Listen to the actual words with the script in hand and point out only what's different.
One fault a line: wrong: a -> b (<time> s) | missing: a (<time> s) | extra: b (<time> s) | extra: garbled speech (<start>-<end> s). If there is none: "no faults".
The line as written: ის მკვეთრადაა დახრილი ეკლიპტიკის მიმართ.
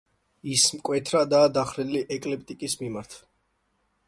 no faults